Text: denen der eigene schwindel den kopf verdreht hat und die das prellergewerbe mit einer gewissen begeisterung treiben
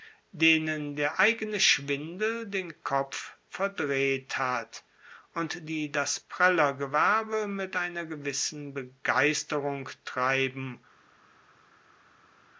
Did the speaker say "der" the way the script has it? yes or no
yes